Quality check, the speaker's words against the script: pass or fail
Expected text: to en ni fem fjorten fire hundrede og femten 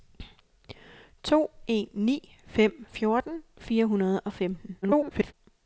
fail